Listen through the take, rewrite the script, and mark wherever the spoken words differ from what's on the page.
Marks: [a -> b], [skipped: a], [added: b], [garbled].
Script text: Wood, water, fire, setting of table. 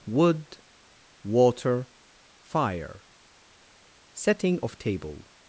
Wood, water, fire, setting of table.